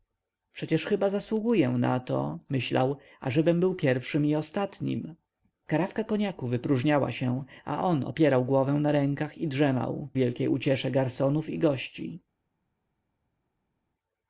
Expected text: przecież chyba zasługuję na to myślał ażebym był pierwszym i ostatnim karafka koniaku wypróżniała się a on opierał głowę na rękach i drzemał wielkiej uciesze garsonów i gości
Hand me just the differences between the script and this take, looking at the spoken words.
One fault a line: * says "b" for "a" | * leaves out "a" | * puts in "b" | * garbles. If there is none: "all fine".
all fine